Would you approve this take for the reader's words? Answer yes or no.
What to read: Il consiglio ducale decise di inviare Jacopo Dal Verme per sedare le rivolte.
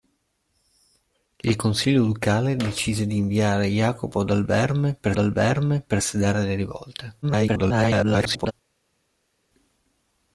no